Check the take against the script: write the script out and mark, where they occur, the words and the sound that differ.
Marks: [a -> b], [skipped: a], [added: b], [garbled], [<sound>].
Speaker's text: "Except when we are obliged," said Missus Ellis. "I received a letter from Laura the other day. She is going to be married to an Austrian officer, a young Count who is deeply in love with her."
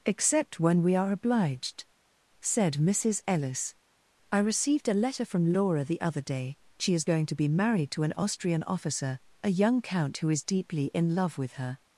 "Except when we are obliged," said Missus Ellis. "I received a letter from Laura the other day. She is going to be married to an Austrian officer, a young Count who is deeply in love with her."